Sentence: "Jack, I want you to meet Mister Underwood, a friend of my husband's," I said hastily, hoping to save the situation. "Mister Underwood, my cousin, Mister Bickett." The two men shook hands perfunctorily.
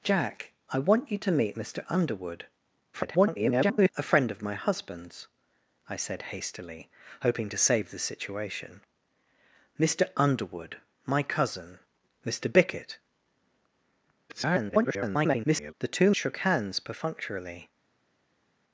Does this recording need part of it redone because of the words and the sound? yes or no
yes